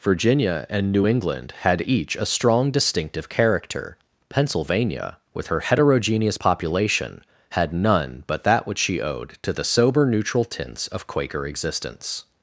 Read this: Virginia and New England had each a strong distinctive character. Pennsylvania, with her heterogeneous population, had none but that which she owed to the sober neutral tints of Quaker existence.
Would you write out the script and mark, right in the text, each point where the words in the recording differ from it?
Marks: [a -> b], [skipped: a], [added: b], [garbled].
Virginia and New England had each a strong distinctive character. Pennsylvania, with her heterogeneous population, had none but that which she owed to the sober neutral tints of Quaker existence.